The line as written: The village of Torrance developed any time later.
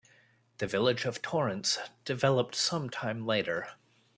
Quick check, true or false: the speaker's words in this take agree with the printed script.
false